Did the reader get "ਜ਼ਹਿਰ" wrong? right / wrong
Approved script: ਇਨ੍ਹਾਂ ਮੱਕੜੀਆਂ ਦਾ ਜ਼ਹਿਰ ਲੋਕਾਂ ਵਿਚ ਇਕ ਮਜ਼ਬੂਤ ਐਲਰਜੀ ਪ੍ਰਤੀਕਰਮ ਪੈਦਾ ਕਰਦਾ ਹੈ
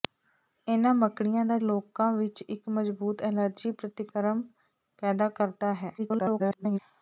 wrong